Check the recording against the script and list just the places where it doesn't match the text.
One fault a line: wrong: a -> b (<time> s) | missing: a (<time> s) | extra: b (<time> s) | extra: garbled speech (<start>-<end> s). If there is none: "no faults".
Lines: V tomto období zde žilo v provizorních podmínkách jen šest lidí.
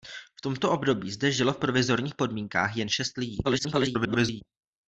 extra: garbled speech (3.4-4.4 s)